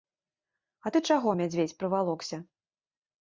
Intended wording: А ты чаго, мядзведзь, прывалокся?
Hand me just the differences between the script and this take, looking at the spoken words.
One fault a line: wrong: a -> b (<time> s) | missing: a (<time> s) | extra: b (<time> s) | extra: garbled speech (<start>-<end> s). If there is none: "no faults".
no faults